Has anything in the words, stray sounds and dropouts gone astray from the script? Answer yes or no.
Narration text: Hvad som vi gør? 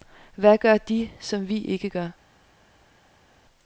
yes